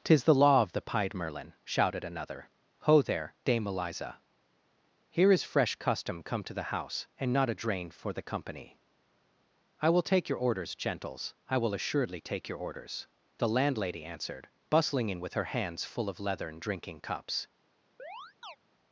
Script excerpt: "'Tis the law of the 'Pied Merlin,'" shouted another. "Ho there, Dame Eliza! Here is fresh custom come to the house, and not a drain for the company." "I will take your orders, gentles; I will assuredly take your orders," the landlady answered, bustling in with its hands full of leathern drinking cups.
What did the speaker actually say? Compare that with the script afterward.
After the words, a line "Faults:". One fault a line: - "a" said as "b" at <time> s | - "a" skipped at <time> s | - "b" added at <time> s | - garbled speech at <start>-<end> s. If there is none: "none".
"'Tis the law of the 'Pied Merlin,'" shouted another. "Ho there, Dame Eliza! Here is fresh custom come to the house, and not a drain for the company." "I will take your orders, gentles; I will assuredly take your orders," the landlady answered, bustling in with her hands full of leathern drinking cups.
Faults:
- "its" said as "her" at 15.3 s